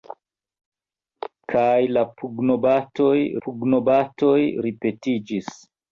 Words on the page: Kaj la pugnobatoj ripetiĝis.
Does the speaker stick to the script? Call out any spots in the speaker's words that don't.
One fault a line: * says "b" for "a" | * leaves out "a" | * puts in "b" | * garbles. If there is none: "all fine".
* puts in "pugnobatoj"